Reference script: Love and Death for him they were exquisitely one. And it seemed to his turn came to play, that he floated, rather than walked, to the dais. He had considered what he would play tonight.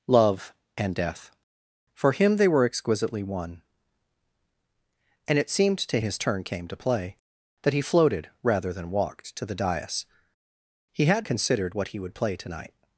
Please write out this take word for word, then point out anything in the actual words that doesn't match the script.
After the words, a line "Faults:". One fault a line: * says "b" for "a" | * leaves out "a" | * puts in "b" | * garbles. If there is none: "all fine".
Love and Death for him they were exquisitely one. And it seemed to his turn came to play, that he floated, rather than walked, to the dais. He had considered what he would play tonight.
Faults:
all fine